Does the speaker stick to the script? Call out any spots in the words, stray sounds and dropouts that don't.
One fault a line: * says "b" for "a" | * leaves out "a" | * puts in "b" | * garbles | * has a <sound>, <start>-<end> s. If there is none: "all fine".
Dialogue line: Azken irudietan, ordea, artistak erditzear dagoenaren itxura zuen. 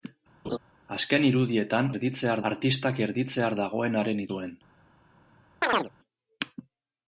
* has a laugh, 0.4-0.6 s
* says "erditzear" for "ordea"
* leaves out "itxura"
* has a chirp, 5.6-5.9 s